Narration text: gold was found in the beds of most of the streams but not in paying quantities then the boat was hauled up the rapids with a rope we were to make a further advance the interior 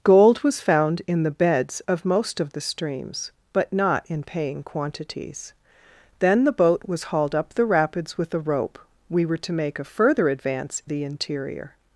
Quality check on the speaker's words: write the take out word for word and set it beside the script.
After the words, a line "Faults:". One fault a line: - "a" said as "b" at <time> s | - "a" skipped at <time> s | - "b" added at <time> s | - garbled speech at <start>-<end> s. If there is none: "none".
gold was found in the beds of most of the streams but not in paying quantities then the boat was hauled up the rapids with a rope we were to make a further advance the interior
Faults:
none